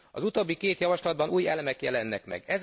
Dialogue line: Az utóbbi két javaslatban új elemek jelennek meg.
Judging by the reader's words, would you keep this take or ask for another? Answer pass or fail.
pass